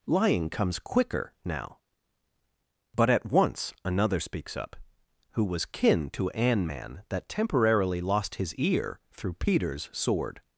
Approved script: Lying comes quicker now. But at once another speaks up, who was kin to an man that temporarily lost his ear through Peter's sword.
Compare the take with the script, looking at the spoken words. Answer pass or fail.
pass